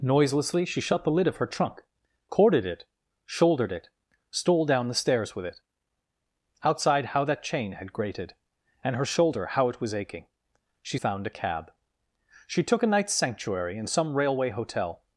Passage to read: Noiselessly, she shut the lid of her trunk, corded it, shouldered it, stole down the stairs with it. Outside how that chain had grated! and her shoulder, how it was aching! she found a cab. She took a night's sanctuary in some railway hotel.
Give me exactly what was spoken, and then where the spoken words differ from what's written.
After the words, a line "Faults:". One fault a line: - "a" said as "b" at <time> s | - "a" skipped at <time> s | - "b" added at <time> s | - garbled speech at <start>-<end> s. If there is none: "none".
Noiselessly, she shut the lid of her trunk, corded it, shouldered it, stole down the stairs with it. Outside how that chain had grated! and her shoulder, how it was aching! she found a cab. She took a night's sanctuary in some railway hotel.
Faults:
none